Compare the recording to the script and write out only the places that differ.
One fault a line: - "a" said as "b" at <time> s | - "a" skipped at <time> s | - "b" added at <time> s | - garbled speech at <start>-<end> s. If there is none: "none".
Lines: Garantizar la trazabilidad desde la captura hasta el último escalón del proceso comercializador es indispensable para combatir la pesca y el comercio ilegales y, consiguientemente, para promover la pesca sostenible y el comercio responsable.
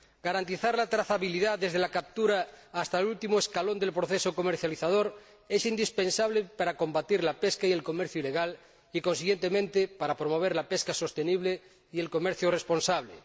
none